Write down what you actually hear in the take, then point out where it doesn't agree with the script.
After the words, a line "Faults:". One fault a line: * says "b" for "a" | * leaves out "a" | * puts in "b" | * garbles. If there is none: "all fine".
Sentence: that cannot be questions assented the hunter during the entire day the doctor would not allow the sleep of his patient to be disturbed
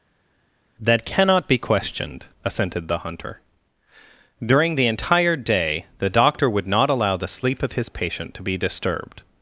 that cannot be questioned assented the hunter during the entire day the doctor would not allow the sleep of his patient to be disturbed
Faults:
* says "questioned" for "questions"